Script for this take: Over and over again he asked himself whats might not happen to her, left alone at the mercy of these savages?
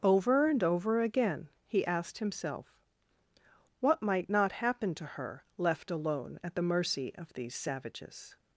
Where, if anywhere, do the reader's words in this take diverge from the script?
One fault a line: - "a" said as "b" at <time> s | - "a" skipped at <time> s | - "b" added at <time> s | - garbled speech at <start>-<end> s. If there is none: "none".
- "whats" said as "what" at 3.8 s